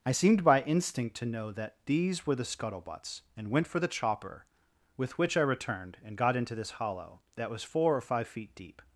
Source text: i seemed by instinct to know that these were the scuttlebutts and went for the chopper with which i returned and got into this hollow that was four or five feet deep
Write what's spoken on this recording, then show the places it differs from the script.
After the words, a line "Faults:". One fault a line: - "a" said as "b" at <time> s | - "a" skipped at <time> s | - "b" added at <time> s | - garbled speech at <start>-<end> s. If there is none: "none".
i seemed by instinct to know that these were the scuttlebutts and went for the chopper with which i returned and got into this hollow that was four or five feet deep
Faults:
none